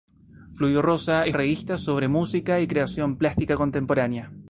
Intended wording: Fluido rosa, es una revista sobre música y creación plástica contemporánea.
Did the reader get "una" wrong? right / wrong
wrong